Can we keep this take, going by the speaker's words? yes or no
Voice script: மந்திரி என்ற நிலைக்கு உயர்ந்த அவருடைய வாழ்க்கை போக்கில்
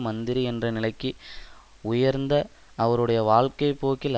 yes